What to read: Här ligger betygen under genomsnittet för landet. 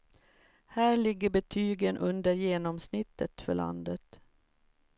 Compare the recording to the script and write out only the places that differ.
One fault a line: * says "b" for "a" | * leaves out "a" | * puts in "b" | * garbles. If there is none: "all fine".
all fine